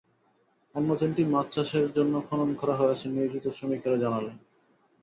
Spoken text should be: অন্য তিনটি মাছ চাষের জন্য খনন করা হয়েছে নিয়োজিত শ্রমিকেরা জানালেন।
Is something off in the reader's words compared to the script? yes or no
no